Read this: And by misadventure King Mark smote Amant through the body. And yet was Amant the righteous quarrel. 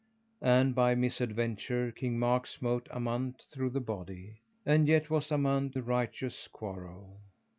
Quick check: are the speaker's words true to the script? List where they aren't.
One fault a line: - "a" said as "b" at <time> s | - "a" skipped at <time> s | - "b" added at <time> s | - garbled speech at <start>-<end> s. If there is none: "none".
none